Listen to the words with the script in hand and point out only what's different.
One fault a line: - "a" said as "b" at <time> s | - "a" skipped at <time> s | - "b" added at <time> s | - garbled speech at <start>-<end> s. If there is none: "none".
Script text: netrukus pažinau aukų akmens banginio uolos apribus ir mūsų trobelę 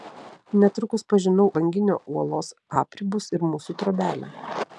- "aukų akmens" skipped at 1.4 s